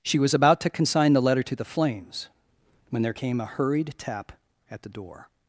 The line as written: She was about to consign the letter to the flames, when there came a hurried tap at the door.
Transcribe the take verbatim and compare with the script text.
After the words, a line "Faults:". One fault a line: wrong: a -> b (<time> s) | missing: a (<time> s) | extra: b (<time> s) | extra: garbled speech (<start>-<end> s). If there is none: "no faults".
She was about to consign the letter to the flames, when there came a hurried tap at the door.
Faults:
no faults